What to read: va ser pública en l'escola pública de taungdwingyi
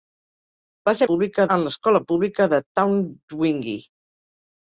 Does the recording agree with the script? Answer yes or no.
yes